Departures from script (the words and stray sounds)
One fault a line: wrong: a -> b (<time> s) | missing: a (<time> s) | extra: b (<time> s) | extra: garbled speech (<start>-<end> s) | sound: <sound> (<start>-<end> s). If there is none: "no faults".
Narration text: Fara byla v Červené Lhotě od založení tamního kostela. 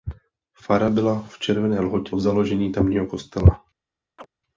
sound: chirp (4.2-4.3 s)